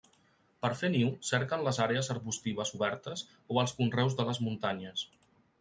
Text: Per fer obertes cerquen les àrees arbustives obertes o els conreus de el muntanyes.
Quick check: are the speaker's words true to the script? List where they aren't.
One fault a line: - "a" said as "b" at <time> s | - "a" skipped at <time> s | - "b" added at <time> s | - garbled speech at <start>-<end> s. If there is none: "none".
- "obertes" said as "niu" at 0.9 s
- "el" said as "les" at 4.3 s